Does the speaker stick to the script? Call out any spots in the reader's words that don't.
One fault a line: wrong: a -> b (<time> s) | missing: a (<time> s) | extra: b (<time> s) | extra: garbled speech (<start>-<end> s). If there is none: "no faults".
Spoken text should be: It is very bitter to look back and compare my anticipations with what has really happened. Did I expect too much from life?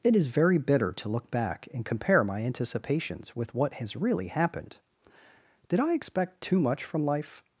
no faults